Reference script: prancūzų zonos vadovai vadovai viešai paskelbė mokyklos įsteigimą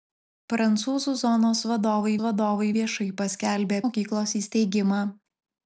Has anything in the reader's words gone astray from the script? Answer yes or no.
no